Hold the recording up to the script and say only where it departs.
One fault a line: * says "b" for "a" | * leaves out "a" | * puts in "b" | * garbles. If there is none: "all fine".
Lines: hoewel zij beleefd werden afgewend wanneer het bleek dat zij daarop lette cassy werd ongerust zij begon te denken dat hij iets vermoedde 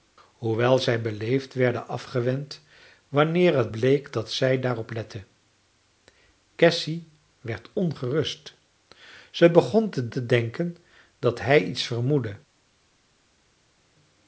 * puts in "te"